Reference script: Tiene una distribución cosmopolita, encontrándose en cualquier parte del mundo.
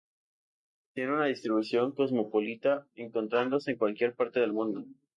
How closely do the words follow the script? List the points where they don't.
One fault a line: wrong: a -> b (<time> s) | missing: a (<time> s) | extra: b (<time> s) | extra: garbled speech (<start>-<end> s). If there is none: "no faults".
no faults